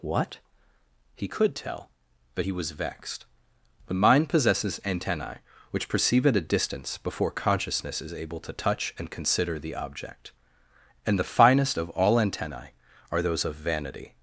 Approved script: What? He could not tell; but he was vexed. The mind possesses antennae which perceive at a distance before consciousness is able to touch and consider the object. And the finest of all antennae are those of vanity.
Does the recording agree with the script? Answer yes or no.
no